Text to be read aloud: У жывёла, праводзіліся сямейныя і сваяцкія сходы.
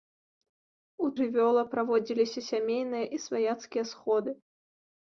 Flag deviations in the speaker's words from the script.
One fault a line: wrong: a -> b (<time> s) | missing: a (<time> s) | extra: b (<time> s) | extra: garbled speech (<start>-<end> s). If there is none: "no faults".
no faults